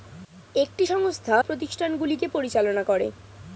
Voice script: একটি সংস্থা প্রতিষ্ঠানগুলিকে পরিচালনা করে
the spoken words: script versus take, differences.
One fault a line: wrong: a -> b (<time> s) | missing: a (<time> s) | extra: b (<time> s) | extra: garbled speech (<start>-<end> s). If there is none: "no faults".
no faults